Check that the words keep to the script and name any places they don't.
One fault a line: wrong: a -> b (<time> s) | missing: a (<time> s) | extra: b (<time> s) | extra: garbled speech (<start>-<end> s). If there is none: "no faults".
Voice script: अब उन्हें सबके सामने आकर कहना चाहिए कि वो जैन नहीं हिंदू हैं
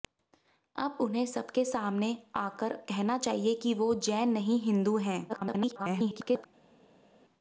extra: garbled speech (5.3-6.5 s)